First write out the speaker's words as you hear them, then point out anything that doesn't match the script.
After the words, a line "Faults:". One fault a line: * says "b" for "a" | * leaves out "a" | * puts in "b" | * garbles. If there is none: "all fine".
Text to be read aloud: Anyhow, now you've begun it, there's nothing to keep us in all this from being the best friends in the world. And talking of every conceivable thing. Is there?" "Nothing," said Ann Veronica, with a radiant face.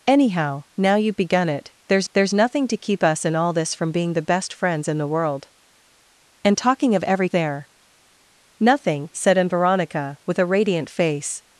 Anyhow, now you've begun it, there's there's nothing to keep us in all this from being the best friends in the world. And talking of every there?" "Nothing," said Ann Veronica, with a radiant face.
Faults:
* puts in "there's"
* leaves out "conceivable thing Is"